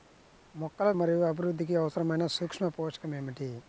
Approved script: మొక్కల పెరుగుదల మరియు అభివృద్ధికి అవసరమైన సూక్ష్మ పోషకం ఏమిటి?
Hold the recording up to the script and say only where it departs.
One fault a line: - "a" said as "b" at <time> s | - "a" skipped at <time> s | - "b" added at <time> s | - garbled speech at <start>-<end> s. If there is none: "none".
- "పెరుగుదల" skipped at 0.9 s